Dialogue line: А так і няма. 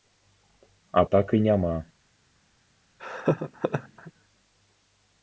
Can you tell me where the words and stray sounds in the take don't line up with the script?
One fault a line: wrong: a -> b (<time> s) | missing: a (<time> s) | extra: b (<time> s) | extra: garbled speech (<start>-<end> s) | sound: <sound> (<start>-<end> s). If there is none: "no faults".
sound: laugh (3.0-4.1 s)